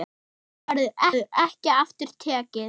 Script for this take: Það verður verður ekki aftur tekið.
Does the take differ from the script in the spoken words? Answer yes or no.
no